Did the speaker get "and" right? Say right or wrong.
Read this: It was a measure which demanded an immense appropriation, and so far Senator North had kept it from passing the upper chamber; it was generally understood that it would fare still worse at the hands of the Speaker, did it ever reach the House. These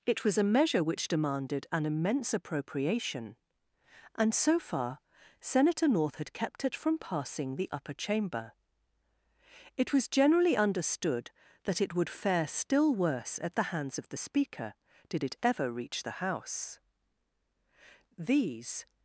right